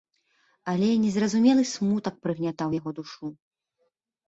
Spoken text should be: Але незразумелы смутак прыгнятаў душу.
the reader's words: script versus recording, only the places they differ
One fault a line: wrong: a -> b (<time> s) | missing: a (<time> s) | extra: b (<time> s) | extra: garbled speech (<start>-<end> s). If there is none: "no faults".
extra: яго (2.8 s)